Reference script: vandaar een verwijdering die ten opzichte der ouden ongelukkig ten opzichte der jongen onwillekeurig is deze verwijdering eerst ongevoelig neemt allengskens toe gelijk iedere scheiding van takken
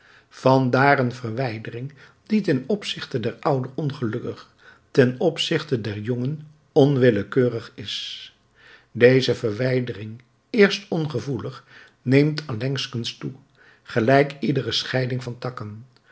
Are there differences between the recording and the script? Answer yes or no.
no